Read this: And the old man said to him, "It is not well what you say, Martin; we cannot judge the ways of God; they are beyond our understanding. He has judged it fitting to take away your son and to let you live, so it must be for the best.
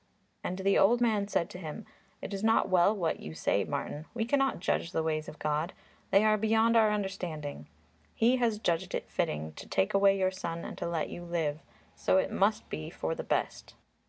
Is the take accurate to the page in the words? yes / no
yes